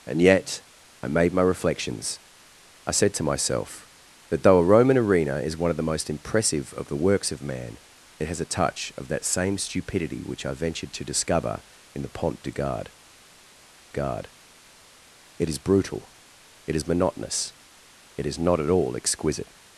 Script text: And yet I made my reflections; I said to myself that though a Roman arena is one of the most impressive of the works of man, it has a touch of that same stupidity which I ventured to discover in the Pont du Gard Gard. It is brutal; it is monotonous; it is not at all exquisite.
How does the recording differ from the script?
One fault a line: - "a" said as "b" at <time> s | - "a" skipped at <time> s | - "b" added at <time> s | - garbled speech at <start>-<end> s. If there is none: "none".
none